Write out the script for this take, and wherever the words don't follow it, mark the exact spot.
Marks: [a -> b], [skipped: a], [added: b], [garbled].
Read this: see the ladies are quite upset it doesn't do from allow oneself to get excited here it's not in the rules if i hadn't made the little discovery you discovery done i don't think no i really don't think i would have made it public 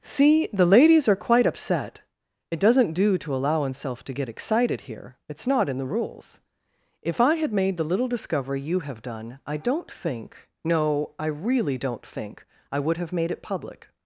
see the ladies are quite upset it doesn't do [from -> to] allow oneself to get excited here it's not in the rules if i [hadn't -> had] made the little discovery you [discovery -> have] done i don't think no i really don't think i would have made it public